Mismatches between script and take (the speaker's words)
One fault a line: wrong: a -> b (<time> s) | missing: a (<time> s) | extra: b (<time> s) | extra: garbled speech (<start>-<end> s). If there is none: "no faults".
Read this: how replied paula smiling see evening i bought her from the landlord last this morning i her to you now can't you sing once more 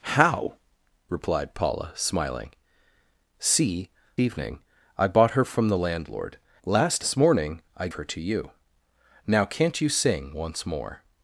no faults